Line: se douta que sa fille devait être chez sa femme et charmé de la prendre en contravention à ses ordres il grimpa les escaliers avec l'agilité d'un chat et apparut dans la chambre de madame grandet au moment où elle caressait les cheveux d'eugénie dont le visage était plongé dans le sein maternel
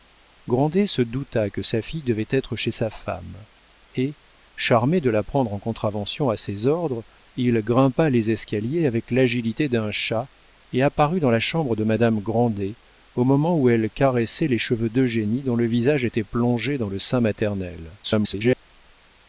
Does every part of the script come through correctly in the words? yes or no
no